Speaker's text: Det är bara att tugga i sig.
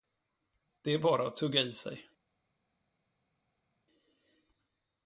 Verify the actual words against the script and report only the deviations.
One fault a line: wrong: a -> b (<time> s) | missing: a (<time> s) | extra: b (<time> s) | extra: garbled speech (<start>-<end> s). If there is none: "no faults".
no faults